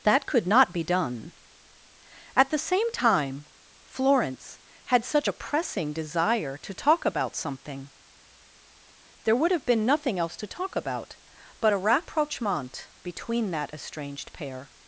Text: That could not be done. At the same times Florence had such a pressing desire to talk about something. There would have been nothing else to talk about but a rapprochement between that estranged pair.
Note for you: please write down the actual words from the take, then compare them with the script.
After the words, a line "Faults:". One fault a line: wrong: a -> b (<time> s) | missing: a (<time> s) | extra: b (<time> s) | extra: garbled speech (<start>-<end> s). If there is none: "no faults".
That could not be done. At the same time Florence had such a pressing desire to talk about something. There would have been nothing else to talk about but a rapprochement between that estranged pair.
Faults:
wrong: times -> time (2.9 s)